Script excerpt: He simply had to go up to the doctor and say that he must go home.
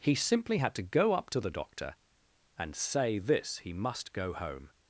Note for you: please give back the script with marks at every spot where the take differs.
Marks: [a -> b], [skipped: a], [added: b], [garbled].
He simply had to go up to the doctor and say [that -> this] he must go home.